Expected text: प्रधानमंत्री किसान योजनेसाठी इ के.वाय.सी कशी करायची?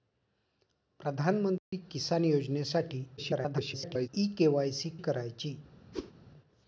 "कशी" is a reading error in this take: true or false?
true